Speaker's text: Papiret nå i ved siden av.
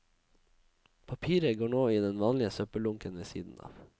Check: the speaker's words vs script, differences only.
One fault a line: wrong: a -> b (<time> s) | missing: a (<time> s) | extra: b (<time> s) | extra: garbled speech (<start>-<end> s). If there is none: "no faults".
extra: går (1.6 s)
extra: den vanlige søppeldunken (2.0 s)